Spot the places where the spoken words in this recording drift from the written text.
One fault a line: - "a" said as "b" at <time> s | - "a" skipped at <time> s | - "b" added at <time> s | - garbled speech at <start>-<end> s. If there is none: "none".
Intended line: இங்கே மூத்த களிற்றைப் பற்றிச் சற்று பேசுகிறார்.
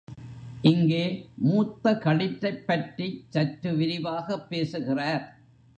- "விரிவாகப்" added at 3.8 s